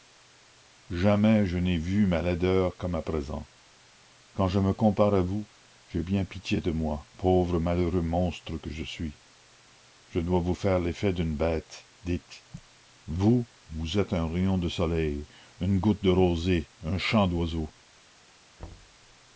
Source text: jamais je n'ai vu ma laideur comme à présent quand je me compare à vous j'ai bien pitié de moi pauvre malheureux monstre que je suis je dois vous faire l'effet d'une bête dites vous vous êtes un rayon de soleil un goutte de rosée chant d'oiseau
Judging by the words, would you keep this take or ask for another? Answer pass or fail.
fail